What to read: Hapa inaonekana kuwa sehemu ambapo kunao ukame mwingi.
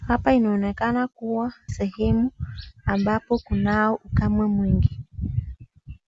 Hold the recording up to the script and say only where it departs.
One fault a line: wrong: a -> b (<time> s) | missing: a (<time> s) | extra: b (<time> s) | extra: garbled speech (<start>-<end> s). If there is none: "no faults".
no faults